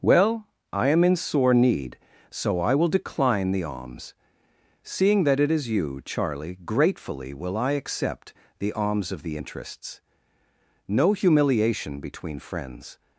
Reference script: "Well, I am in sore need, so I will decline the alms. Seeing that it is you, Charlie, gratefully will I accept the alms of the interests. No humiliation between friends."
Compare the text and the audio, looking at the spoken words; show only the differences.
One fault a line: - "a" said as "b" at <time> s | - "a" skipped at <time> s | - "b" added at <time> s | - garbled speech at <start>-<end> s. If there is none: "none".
none